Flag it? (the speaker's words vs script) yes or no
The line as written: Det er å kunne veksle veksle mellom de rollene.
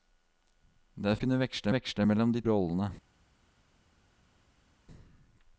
no